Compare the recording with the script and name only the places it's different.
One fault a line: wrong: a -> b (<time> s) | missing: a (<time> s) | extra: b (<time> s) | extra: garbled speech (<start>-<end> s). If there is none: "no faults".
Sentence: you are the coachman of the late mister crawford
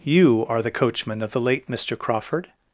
no faults